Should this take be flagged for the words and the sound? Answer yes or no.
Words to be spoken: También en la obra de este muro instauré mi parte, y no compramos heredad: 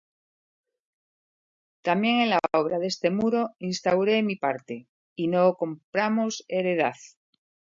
no